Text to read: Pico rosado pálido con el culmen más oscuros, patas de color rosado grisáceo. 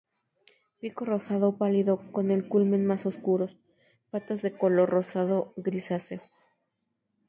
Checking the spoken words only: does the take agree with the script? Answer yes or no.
yes